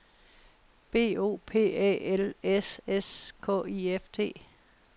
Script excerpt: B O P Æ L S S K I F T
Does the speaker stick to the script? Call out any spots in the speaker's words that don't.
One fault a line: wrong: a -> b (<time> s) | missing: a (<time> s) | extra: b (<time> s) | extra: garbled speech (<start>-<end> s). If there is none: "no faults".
no faults